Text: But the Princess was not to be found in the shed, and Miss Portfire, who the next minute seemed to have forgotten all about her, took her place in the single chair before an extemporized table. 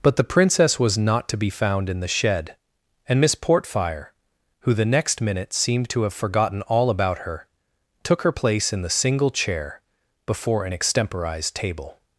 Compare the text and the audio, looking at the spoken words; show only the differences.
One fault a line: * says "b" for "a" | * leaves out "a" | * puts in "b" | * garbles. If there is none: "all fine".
all fine